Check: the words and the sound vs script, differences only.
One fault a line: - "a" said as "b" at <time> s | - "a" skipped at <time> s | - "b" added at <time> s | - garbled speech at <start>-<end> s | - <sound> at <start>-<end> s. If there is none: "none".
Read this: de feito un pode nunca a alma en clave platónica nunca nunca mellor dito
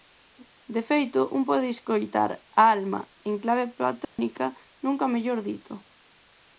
- "nunca" said as "escoitar" at 1.8 s
- dropout at 4.0-4.2 s
- "nunca" skipped at 5.1 s